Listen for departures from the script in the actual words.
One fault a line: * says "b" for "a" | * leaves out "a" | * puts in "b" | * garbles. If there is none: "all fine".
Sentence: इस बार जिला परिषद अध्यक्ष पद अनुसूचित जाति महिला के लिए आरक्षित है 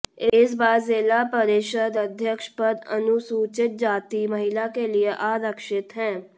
all fine